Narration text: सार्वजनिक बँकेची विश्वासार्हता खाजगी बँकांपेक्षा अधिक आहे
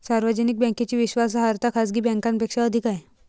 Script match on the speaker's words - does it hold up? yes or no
yes